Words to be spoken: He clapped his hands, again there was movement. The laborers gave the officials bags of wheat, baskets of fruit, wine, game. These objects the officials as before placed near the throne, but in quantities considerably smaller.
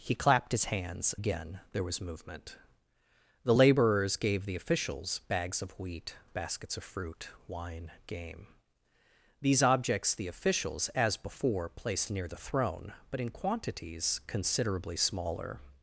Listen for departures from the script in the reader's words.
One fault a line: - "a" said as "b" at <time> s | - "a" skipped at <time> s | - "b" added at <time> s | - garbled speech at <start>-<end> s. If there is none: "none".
none